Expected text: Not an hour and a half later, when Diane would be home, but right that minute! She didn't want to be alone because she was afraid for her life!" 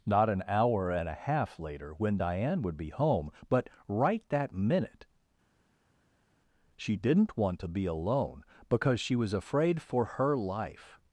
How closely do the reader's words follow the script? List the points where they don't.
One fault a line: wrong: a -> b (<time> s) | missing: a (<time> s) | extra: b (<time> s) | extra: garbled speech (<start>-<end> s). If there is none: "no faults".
no faults